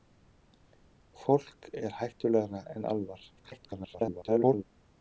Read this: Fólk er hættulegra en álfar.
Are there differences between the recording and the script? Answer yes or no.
yes